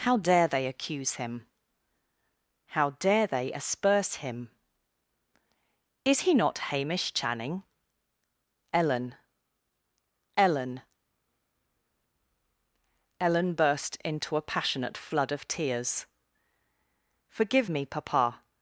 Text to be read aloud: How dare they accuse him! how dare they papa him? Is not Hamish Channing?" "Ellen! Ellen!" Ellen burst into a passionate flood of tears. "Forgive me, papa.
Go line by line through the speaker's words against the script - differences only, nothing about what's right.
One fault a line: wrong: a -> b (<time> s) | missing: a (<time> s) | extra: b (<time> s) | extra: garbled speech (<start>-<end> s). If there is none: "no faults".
wrong: papa -> asperse (3.5 s)
extra: he (6.2 s)